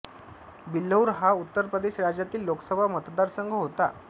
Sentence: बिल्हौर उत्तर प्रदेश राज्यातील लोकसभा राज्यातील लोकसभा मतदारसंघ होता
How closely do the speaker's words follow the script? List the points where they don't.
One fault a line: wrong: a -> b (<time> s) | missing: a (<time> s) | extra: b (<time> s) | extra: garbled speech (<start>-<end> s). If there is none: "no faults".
extra: हा (1.2 s)
missing: राज्यातील लोकसभा (2.9 s)